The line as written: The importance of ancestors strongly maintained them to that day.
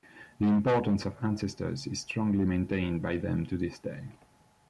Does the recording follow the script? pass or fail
fail